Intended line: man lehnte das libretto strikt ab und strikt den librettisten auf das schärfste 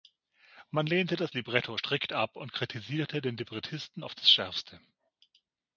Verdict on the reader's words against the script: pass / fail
fail